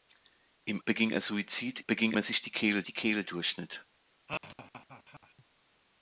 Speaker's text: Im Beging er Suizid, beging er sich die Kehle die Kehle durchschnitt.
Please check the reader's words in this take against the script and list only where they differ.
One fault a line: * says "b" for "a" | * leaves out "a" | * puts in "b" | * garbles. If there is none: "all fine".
all fine